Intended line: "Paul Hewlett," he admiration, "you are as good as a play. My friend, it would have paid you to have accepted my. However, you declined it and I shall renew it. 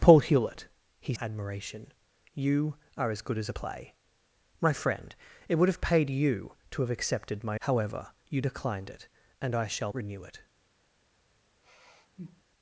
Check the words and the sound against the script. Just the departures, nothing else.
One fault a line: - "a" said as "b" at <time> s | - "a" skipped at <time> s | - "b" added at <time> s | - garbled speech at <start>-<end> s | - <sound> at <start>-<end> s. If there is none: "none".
- sigh at 11.6-12.4 s